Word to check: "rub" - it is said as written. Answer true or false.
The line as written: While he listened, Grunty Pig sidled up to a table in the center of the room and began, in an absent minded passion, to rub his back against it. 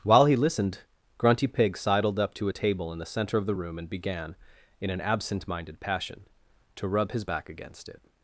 true